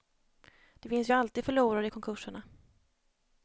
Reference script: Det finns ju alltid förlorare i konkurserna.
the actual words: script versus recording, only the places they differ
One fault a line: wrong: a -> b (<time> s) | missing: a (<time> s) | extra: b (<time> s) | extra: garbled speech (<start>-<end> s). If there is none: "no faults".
no faults